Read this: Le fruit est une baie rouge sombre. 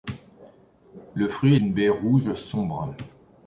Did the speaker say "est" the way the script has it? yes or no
no